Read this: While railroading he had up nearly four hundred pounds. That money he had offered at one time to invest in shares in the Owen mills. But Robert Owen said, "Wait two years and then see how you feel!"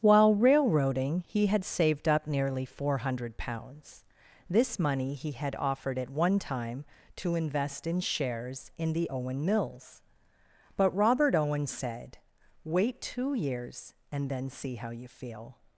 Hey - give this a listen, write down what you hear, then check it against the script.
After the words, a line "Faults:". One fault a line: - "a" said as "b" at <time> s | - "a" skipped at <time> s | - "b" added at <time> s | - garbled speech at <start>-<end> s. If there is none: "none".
While railroading he had saved up nearly four hundred pounds. This money he had offered at one time to invest in shares in the Owen mills. But Robert Owen said, "Wait two years and then see how you feel!"
Faults:
- "saved" added at 1.6 s
- "That" said as "This" at 4.5 s